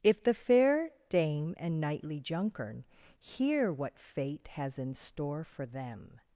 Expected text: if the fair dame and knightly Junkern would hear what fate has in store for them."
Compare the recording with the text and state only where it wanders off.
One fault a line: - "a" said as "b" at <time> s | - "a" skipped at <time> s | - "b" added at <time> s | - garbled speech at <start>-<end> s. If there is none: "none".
- "would" skipped at 2.9 s